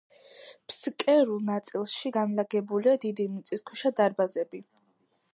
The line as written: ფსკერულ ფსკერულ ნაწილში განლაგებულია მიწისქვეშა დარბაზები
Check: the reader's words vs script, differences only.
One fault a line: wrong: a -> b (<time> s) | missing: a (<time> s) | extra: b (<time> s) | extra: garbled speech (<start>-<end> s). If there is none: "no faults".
missing: ფსკერულ (1.4 s)
extra: დიდი (3.0 s)